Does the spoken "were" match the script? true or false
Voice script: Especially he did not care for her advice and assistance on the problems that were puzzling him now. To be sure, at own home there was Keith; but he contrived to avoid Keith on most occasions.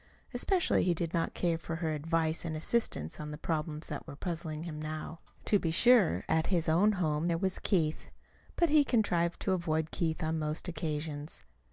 true